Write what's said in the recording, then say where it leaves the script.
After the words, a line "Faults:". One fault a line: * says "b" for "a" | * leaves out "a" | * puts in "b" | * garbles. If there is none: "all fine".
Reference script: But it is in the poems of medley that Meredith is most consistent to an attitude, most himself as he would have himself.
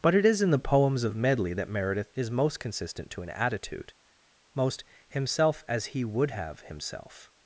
But it is in the poems of medley that Meredith is most consistent to an attitude, most himself as he would have himself.
Faults:
all fine